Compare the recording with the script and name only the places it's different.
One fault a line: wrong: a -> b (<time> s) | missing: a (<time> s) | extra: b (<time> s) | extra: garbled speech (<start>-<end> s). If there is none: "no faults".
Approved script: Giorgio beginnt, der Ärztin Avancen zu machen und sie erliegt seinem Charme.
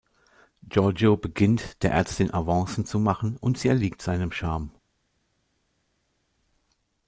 no faults